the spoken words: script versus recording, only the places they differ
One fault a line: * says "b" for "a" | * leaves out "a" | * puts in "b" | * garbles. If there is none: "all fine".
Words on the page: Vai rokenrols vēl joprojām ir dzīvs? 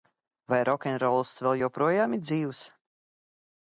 all fine